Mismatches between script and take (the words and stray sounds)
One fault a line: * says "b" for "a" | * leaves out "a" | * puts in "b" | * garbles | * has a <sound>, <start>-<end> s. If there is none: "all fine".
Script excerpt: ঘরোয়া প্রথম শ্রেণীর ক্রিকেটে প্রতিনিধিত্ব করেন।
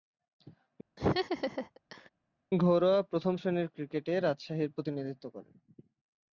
* has a laugh, 1.0-2.1 s
* puts in "রাজশাহীর"